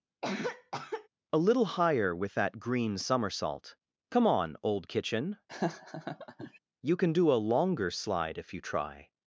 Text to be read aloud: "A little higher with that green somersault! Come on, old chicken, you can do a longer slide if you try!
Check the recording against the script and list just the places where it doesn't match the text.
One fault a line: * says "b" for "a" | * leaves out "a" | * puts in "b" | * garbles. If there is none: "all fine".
* says "kitchen" for "chicken"